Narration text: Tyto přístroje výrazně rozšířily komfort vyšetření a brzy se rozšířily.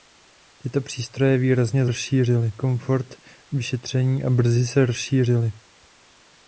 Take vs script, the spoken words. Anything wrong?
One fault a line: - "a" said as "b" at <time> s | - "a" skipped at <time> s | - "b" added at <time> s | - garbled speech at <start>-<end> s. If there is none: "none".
none